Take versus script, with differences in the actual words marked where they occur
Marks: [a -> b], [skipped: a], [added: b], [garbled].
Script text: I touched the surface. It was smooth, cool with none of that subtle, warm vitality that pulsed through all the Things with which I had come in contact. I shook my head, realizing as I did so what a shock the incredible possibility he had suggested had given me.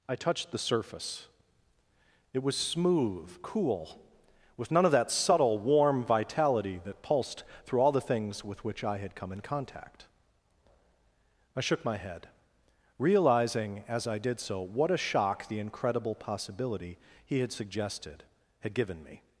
I touched the surface. It was smooth, cool with none of that subtle, warm vitality that pulsed through all the Things with which I had come in contact. I shook my head, realizing as I did so what a shock the incredible possibility he had suggested had given me.